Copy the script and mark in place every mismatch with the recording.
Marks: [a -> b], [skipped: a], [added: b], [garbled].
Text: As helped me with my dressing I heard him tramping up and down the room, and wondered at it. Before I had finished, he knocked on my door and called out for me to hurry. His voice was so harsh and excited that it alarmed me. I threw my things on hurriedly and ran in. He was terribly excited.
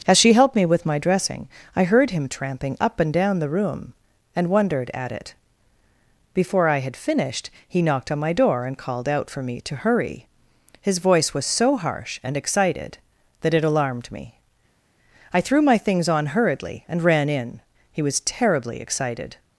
As [added: she] helped me with my dressing I heard him tramping up and down the room, and wondered at it. Before I had finished, he knocked on my door and called out for me to hurry. His voice was so harsh and excited that it alarmed me. I threw my things on hurriedly and ran in. He was terribly excited.